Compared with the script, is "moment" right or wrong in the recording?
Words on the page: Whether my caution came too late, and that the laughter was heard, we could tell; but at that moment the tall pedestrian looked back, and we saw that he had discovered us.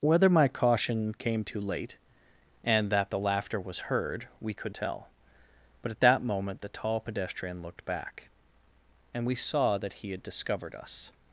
right